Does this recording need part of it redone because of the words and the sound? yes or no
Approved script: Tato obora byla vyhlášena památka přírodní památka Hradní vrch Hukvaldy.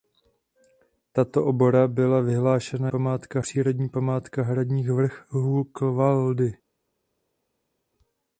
no